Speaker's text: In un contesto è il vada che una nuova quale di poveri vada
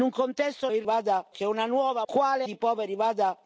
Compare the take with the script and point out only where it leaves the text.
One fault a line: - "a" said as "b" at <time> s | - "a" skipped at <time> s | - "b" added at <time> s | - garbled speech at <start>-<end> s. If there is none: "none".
none